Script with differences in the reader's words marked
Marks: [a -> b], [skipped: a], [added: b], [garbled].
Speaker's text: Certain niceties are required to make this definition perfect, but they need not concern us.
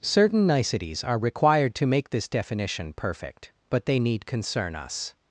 Certain niceties are required to make this definition perfect, but they need [skipped: not] concern us.